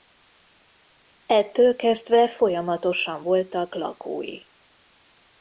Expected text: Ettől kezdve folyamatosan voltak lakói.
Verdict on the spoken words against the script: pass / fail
pass